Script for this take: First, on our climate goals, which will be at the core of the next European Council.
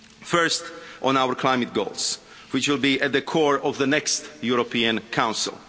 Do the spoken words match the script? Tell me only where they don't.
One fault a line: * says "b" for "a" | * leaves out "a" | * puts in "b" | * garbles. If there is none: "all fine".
all fine